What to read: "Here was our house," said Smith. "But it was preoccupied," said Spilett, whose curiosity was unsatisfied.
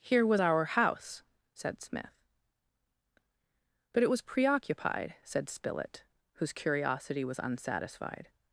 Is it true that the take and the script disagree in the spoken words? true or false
false